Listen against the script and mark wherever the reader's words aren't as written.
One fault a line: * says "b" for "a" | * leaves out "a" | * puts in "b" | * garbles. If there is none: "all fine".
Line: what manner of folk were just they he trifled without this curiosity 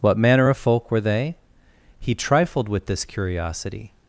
* leaves out "just"
* says "with" for "without"